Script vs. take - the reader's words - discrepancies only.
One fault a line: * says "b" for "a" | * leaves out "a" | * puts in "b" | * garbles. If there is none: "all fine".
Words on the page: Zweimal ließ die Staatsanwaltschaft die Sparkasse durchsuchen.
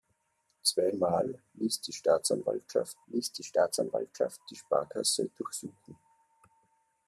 * puts in "ließ die Staatsanwaltschaft"